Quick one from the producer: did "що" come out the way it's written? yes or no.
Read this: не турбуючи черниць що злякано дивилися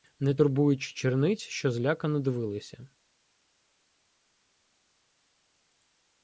yes